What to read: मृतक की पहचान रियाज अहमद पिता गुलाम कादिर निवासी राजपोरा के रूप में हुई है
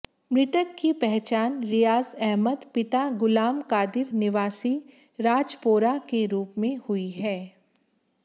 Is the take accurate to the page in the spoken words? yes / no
yes